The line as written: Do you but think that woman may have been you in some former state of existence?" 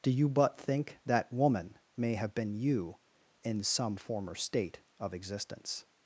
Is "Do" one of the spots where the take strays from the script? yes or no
no